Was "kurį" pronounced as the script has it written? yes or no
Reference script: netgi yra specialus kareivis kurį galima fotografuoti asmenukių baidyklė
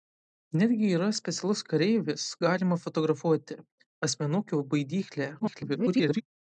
no